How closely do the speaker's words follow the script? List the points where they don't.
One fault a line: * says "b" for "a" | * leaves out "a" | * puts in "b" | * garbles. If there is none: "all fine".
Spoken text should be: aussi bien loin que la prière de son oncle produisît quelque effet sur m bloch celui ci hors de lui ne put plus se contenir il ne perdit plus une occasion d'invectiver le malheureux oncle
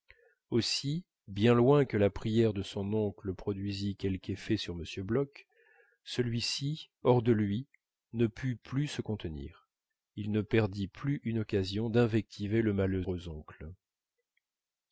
all fine